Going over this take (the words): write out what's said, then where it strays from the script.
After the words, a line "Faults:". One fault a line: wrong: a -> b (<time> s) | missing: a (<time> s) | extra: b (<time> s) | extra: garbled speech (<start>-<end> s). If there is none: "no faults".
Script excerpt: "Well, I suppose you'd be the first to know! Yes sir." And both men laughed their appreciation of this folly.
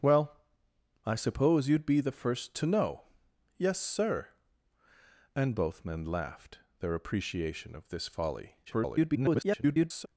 "Well, I suppose you'd be the first to know! Yes sir." And both men laughed their appreciation of this folly. [garbled]
Faults:
extra: garbled speech (8.7-10.1 s)